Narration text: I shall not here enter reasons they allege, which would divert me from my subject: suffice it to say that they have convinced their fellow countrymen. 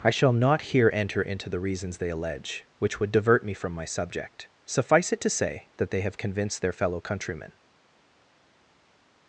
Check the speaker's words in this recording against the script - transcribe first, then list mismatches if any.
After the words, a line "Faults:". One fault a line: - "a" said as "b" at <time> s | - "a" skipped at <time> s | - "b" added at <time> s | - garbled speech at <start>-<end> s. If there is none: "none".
I shall not here enter into the reasons they allege, which would divert me from my subject: suffice it to say that they have convinced their fellow countrymen.
Faults:
- "into the" added at 1.2 s